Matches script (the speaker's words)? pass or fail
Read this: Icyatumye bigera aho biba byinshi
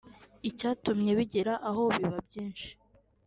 pass